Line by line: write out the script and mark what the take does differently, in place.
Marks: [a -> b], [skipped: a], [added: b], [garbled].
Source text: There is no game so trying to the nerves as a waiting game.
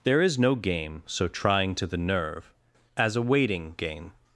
There is no game so trying to the [nerves -> nerve] as a waiting game.